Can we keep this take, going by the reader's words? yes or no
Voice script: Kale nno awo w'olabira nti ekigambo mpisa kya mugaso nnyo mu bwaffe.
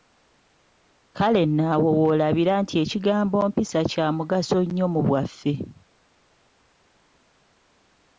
yes